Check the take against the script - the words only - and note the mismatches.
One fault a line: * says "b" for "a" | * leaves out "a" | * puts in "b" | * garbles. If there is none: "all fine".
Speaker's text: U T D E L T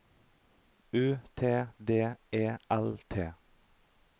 all fine